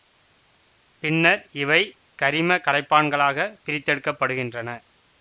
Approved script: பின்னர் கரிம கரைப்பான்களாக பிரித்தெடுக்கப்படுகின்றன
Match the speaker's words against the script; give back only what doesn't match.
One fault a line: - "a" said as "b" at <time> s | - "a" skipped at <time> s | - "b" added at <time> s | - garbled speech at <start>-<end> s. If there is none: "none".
- "இவை" added at 1.6 s